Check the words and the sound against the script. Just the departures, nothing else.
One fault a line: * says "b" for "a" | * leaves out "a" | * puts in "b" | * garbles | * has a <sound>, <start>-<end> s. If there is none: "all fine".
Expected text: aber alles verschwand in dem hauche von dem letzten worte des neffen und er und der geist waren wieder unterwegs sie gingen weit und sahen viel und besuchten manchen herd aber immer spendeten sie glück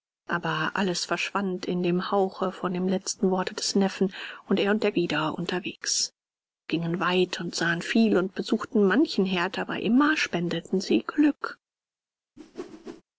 * leaves out "geist waren"
* leaves out "sie"
* has a whoosh, 12.4-13.0 s